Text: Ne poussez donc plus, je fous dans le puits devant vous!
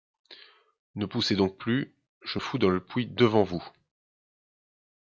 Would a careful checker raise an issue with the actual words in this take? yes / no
no